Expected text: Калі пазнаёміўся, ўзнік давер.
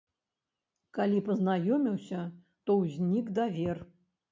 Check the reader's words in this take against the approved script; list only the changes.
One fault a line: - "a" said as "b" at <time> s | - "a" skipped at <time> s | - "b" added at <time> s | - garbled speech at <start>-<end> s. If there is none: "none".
- "то" added at 2.6 s